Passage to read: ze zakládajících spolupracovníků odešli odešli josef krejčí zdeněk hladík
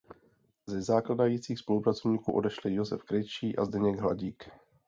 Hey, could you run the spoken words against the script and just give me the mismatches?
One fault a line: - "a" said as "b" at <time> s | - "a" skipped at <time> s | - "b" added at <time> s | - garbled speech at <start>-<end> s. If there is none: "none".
- "odešli" skipped at 2.7 s
- "a" added at 3.6 s